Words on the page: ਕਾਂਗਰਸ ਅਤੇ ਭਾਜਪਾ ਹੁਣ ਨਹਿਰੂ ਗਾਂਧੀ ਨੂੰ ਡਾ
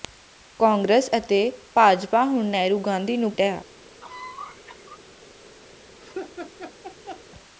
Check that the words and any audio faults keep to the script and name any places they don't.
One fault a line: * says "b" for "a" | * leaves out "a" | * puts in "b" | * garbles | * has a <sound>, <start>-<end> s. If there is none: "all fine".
* has a cough, 4.0-5.0 s
* has a laugh, 6.0-7.2 s